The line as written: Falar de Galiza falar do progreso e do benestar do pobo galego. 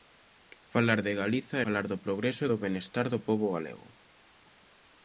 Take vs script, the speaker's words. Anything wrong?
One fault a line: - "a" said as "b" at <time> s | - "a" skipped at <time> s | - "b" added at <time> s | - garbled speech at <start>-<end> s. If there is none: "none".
none